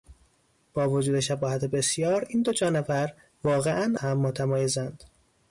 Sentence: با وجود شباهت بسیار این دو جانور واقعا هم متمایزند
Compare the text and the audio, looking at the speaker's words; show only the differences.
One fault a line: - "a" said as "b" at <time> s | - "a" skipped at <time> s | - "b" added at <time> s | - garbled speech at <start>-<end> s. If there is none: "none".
none